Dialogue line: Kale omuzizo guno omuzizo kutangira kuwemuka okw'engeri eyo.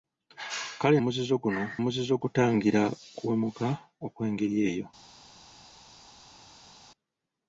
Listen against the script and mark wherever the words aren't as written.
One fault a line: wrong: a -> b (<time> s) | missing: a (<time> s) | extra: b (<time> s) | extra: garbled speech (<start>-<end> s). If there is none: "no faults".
no faults